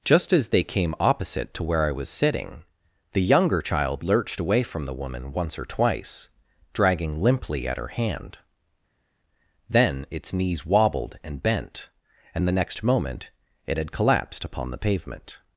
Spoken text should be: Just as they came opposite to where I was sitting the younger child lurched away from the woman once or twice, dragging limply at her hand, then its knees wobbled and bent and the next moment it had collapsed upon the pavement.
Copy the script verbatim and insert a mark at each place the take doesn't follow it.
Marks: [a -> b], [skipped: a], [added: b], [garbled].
Just as they came opposite to where I was sitting the younger child lurched away from the woman once or twice, dragging limply at her hand, then its knees wobbled and bent and the next moment it had collapsed upon the pavement.